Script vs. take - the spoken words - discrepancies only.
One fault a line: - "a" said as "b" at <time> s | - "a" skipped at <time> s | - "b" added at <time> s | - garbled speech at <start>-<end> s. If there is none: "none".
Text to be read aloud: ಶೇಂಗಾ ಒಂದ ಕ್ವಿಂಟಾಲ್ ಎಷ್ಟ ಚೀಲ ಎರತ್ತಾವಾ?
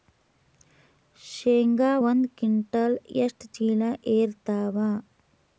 none